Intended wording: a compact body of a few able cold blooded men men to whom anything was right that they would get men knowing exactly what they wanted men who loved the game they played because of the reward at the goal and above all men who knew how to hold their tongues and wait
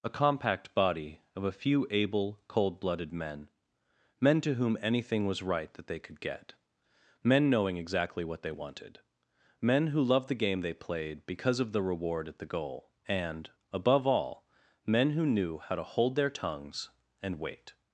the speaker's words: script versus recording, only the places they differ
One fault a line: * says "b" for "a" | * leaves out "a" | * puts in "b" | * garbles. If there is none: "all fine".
* says "could" for "would"